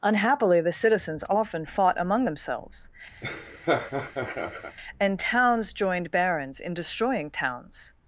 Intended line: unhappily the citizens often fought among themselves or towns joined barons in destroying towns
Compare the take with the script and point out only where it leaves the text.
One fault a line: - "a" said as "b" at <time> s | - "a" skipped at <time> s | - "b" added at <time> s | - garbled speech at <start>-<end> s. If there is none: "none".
- "or" said as "and" at 5.0 s